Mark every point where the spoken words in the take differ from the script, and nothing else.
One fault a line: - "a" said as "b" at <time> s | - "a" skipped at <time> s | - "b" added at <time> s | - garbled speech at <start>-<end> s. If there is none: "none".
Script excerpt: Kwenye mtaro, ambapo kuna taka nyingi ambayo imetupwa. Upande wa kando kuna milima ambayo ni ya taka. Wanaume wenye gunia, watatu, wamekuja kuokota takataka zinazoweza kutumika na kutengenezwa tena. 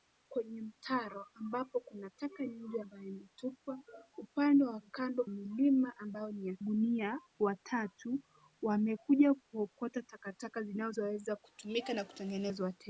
- "kuna" skipped at 5.2 s
- "taka Wanaume wenye" skipped at 6.6 s